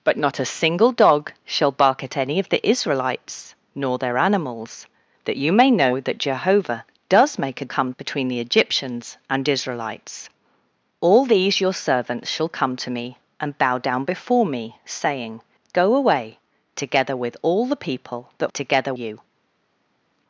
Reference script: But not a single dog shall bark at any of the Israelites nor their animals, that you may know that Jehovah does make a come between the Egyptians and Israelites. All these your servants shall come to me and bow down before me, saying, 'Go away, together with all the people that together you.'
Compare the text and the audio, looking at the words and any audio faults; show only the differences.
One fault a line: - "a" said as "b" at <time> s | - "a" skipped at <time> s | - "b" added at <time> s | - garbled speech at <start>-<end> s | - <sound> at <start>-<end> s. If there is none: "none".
none